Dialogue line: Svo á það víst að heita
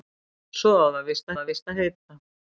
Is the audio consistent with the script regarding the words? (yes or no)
no